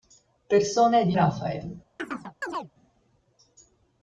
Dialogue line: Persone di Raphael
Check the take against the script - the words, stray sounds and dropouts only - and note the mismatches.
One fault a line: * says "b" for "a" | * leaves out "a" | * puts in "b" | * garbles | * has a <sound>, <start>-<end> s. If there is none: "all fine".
* has a chirp, 2.0-2.7 s